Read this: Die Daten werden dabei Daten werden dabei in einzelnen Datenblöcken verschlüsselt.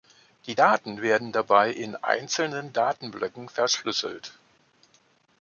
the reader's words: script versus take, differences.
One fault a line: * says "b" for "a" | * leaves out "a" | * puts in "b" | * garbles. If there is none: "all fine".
* leaves out "Daten werden dabei"